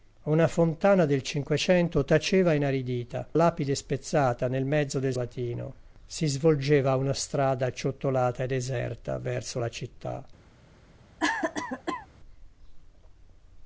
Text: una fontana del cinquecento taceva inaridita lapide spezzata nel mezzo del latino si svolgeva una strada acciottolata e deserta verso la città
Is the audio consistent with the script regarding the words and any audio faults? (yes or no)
no